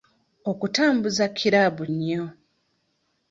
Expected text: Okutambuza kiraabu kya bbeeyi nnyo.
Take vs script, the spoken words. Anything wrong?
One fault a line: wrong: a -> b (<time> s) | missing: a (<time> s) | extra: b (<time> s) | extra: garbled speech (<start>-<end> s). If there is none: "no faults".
missing: kya bbeeyi (1.8 s)